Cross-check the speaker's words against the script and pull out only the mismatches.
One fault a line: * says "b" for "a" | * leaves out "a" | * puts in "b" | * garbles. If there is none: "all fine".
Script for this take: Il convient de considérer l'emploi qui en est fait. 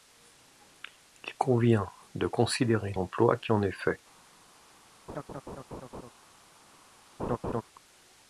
all fine